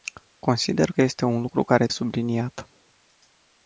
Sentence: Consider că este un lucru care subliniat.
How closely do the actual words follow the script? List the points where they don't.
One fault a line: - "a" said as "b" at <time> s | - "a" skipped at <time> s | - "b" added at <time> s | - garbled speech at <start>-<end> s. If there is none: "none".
none